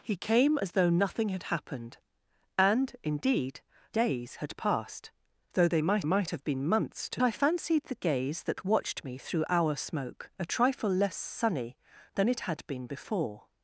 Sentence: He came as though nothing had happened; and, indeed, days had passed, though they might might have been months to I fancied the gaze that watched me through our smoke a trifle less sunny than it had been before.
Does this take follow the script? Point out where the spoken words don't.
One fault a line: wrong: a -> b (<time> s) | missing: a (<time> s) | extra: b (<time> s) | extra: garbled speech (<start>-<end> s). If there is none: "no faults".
no faults